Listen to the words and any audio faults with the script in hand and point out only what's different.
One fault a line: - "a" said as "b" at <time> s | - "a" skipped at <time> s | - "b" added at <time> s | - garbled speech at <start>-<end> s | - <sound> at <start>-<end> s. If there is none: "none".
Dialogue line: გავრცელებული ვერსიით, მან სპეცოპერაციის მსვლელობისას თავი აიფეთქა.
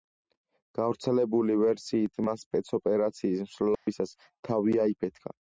- dropout at 3.8-3.9 s